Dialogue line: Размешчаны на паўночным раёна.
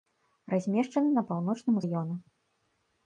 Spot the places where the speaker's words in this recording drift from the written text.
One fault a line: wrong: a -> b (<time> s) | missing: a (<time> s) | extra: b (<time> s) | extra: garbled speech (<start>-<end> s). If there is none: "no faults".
no faults